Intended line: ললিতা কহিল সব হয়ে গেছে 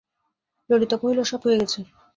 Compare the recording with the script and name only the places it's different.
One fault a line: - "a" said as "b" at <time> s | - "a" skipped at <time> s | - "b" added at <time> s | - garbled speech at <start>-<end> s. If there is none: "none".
none